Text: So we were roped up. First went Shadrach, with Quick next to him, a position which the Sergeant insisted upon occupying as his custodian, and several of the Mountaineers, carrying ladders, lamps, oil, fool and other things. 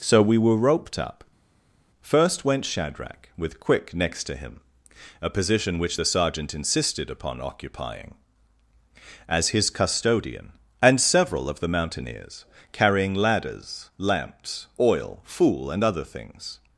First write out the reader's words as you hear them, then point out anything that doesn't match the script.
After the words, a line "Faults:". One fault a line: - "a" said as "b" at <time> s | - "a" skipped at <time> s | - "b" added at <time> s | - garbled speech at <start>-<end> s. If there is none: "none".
So we were roped up. First went Shadrach, with Quick next to him, a position which the Sergeant insisted upon occupying as his custodian, and several of the Mountaineers, carrying ladders, lamps, oil, fool and other things.
Faults:
none